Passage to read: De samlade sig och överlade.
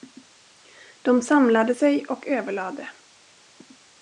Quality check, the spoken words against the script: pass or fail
pass